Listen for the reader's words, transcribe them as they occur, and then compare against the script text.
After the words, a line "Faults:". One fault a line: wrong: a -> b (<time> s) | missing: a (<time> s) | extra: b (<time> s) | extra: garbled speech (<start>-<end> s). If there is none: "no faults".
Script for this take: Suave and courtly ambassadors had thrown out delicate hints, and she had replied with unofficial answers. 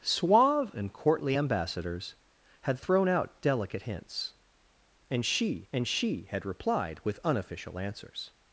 Suave and courtly ambassadors had thrown out delicate hints, and she and she had replied with unofficial answers.
Faults:
extra: and she (5.7 s)